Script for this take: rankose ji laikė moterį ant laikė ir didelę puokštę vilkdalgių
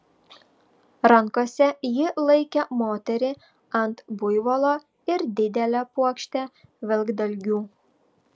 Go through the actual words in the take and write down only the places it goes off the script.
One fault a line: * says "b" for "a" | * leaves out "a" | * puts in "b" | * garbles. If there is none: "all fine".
* says "buivolo" for "laikė"